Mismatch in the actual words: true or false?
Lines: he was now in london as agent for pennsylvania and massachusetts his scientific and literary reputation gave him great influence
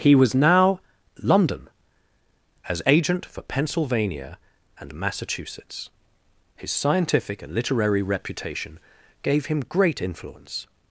true